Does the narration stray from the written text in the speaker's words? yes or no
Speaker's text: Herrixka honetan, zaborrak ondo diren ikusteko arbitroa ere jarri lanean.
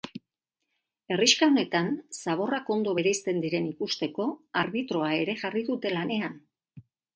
yes